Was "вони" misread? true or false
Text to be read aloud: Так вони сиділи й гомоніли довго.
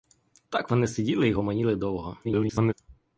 false